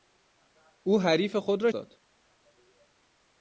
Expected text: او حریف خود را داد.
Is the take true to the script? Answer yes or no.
yes